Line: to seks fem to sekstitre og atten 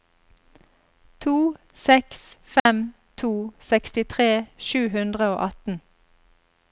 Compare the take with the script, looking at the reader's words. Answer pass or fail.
fail